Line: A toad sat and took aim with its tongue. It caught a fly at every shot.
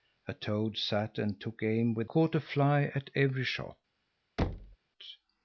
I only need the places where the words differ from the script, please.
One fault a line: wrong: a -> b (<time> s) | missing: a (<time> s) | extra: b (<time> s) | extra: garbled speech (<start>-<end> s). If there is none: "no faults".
missing: its tongue It (2.1 s)